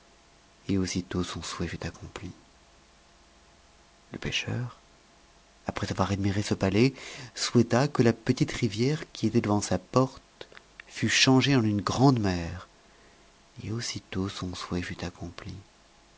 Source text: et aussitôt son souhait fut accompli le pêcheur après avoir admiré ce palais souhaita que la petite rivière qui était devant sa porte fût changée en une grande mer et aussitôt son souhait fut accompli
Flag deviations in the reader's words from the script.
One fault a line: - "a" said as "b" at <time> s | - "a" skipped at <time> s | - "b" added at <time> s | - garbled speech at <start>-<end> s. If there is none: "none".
none